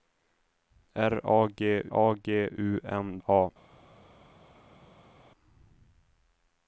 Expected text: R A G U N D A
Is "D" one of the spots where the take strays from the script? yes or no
yes